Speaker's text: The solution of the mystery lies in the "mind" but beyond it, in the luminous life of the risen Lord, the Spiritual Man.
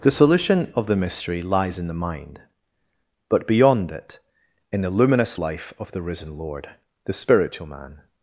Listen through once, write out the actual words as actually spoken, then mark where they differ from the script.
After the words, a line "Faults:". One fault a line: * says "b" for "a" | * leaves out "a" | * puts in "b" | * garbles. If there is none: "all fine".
The solution of the mystery lies in the "mind" but beyond it, in the luminous life of the risen Lord, the Spiritual Man.
Faults:
all fine